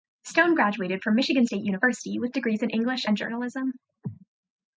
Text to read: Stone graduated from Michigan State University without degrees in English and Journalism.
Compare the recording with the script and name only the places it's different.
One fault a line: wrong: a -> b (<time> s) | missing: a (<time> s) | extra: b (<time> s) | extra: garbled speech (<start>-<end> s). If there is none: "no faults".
wrong: without -> with (2.2 s)